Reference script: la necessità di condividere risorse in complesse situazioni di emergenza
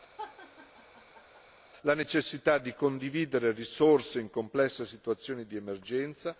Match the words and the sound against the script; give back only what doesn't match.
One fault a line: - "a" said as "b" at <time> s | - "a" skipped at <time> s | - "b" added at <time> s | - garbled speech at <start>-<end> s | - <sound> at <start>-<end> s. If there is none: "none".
- laugh at 0.2-1.4 s